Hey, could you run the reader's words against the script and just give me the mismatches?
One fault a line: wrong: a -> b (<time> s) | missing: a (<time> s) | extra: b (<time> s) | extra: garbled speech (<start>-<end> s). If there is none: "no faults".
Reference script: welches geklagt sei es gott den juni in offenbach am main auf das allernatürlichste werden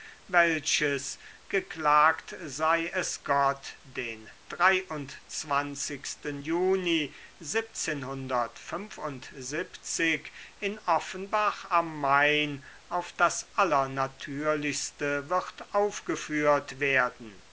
extra: wird aufgeführt (15.3 s)